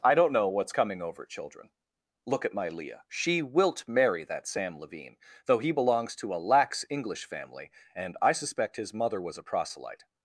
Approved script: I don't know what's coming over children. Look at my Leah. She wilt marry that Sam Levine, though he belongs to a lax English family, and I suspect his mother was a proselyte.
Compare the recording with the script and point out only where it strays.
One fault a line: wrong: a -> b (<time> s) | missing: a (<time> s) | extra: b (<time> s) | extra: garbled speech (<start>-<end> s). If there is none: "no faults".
no faults